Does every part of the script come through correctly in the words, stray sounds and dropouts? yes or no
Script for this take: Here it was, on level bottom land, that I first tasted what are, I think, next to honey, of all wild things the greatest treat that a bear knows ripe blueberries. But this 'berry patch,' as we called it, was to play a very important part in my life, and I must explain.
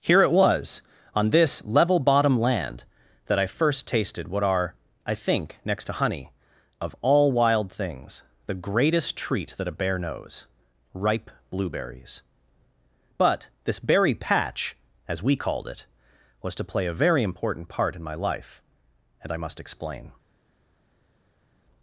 no